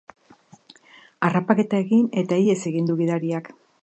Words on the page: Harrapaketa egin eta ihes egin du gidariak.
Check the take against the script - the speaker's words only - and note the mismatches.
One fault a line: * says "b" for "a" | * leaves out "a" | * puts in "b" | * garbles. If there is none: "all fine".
all fine